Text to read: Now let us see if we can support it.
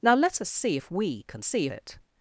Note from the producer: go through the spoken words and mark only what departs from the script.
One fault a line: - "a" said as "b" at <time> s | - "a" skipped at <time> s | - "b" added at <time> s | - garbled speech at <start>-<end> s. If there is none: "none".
- "support" said as "see" at 1.4 s